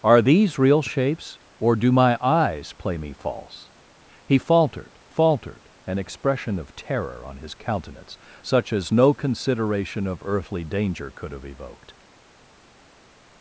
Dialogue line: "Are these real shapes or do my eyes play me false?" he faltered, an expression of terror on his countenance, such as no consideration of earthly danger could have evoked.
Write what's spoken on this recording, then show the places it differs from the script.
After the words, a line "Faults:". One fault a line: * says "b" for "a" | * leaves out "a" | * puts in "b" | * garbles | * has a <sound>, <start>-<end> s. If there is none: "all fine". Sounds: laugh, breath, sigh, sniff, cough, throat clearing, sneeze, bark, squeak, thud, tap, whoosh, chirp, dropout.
"Are these real shapes or do my eyes play me false?" he faltered faltered, an expression of terror on his countenance, such as no consideration of earthly danger could have evoked.
Faults:
* puts in "faltered"